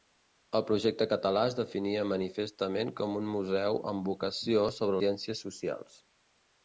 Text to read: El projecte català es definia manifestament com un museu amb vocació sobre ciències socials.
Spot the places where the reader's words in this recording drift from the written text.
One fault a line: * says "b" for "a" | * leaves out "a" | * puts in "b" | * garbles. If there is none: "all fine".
all fine